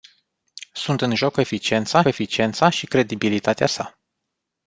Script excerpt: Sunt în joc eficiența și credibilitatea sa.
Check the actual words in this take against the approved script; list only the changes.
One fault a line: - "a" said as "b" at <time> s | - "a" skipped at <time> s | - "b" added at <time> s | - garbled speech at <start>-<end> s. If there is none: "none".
- "eficiența" added at 2.0 s